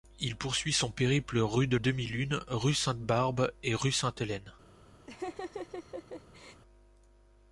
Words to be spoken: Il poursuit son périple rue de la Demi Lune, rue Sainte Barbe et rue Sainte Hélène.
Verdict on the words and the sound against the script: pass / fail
fail